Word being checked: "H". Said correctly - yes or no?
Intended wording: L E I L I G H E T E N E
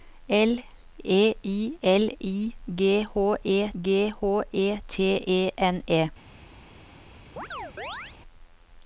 yes